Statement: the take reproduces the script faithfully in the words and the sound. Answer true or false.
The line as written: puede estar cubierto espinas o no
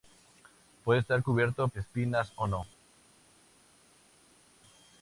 true